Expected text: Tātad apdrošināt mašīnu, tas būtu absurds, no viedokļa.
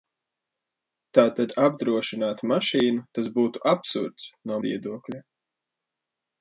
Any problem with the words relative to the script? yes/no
no